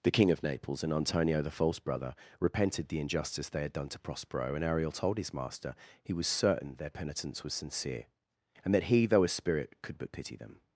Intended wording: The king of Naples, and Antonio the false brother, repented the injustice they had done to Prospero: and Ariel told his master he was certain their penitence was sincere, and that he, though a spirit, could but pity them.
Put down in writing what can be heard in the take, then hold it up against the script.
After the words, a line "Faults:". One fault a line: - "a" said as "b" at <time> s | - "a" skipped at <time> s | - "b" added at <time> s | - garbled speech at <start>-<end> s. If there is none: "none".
The king of Naples, and Antonio the false brother, repented the injustice they had done to Prospero: and Ariel told his master he was certain their penitence was sincere, and that he, though a spirit, could but pity them.
Faults:
none